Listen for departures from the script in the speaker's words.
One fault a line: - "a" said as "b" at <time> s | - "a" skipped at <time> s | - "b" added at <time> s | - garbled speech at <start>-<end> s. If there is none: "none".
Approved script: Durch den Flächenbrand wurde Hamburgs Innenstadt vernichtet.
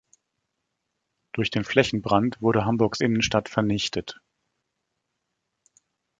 none